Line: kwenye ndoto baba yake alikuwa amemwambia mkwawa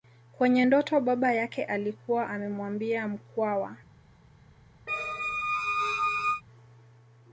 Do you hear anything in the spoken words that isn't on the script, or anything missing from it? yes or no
no